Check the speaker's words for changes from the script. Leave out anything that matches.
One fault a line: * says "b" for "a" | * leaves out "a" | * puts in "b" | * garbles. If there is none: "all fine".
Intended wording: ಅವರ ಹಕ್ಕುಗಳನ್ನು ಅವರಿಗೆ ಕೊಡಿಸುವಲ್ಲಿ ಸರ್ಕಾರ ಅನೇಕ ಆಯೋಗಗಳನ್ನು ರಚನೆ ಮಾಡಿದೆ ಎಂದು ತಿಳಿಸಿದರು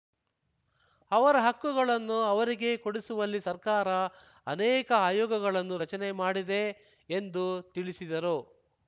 all fine